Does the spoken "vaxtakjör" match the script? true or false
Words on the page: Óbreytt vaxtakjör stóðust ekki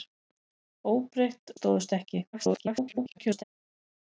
false